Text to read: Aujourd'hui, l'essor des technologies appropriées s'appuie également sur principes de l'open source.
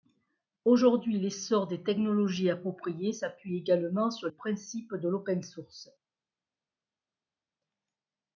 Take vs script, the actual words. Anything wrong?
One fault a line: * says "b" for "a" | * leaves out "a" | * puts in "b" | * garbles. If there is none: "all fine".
all fine